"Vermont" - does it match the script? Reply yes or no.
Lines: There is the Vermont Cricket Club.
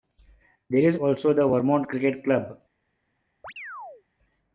yes